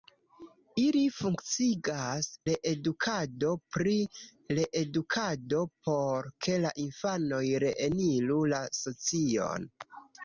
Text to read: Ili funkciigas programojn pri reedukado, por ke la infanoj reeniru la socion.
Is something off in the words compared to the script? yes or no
yes